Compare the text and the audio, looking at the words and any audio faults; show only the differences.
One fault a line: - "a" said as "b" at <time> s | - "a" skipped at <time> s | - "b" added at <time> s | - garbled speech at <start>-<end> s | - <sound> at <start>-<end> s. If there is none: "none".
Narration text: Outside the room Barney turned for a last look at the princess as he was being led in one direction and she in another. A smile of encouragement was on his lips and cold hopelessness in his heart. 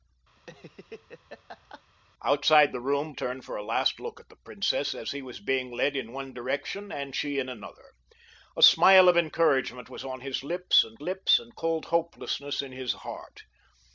- laugh at 0.4-1.8 s
- "Barney" skipped at 3.2 s
- "lips and" added at 11.0 s